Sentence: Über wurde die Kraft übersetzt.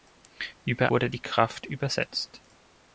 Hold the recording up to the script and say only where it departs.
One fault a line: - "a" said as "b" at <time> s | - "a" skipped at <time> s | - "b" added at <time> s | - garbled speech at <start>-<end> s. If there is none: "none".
none